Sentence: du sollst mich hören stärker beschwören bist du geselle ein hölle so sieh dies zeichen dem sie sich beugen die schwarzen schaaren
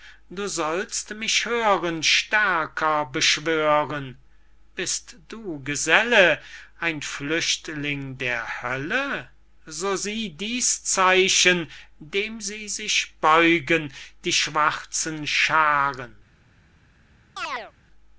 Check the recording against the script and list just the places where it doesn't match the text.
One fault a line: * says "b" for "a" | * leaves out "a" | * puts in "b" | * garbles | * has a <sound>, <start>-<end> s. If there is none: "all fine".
* puts in "flüchtling der"
* has a chirp, 17.4-17.7 s